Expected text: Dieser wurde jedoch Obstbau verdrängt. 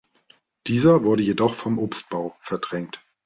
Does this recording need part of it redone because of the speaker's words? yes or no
yes